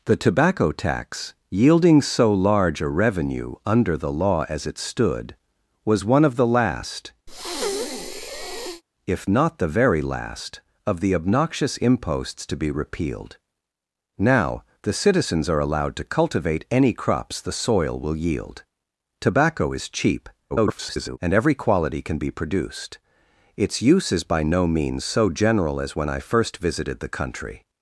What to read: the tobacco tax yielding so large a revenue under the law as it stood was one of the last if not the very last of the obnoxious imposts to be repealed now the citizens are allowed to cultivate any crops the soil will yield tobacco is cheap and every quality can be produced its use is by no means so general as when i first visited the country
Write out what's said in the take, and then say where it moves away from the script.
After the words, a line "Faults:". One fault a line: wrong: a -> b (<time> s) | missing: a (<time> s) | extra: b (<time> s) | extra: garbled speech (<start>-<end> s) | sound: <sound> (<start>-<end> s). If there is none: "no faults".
the tobacco tax yielding so large a revenue under the law as it stood was one of the last if not the very last of the obnoxious imposts to be repealed now the citizens are allowed to cultivate any crops the soil will yield tobacco is cheap [garbled] and every quality can be produced its use is by no means so general as when i first visited the country
Faults:
sound: breath (7.3-8.8 s)
extra: garbled speech (20.5-21.2 s)